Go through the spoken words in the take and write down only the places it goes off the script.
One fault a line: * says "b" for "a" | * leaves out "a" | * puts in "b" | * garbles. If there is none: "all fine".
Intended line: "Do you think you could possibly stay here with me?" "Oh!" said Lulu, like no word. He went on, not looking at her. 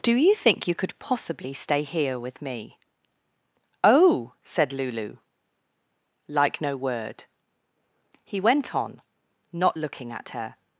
all fine